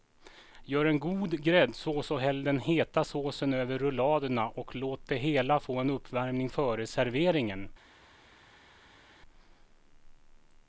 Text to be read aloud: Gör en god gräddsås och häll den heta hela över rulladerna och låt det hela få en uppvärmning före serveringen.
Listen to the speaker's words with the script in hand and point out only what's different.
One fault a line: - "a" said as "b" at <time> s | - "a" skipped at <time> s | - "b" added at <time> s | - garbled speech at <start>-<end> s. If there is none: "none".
- "hela" said as "såsen" at 3.0 s